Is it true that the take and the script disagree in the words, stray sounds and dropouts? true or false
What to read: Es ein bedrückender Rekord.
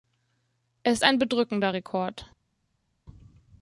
false